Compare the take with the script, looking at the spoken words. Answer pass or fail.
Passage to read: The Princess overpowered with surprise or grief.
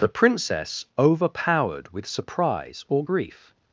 pass